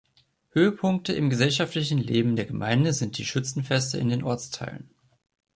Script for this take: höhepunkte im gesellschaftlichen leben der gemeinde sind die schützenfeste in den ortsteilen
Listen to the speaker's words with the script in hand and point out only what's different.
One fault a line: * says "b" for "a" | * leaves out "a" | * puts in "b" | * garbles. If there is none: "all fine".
all fine